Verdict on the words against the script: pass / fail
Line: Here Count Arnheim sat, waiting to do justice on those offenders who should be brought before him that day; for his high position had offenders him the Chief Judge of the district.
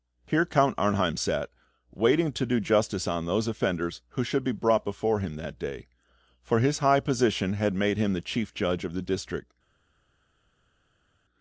fail